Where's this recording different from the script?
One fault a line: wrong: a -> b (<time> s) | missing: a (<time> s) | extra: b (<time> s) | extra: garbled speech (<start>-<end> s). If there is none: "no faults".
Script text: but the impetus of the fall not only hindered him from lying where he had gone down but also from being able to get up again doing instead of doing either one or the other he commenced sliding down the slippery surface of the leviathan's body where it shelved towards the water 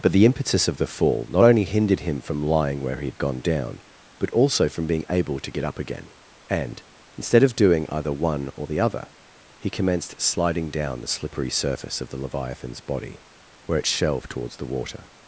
wrong: doing -> and (6.5 s)